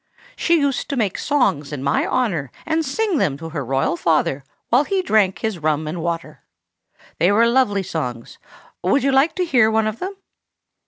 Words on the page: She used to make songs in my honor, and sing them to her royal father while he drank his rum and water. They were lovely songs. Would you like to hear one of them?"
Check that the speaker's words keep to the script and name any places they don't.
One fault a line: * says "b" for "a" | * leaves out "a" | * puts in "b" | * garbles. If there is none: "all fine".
all fine